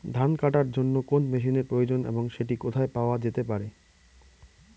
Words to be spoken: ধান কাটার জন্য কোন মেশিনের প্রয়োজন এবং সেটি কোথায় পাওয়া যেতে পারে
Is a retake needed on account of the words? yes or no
no